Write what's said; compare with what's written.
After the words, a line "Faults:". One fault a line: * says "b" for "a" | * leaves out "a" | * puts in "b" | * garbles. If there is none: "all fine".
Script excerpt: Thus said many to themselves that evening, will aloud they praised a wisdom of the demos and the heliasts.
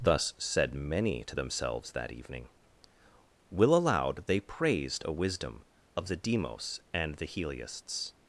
Thus said many to themselves that evening, will aloud they praised a wisdom of the demos and the heliasts.
Faults:
all fine